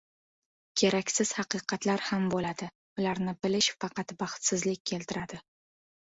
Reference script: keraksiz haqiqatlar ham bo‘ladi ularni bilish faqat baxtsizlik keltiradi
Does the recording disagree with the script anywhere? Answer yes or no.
no